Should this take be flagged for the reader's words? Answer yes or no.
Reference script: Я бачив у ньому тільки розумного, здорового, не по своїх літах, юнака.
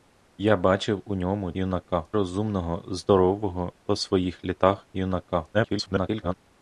yes